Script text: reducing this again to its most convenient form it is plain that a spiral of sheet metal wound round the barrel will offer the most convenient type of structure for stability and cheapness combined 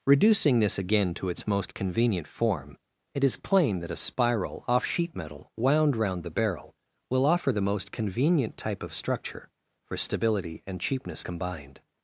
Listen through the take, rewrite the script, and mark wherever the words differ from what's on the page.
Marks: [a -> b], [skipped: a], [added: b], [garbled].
reducing this again to its most convenient form it is plain that a spiral [of -> off] sheet metal wound round the barrel will offer the most convenient type of structure for stability and cheapness combined